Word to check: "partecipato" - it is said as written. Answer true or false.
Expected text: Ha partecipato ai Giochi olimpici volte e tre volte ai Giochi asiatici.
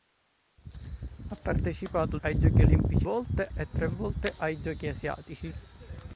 true